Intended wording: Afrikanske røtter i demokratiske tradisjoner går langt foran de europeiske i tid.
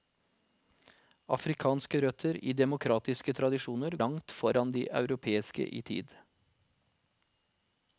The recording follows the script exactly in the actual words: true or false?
false